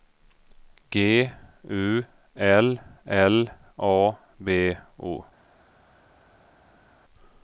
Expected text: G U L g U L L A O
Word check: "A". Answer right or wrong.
wrong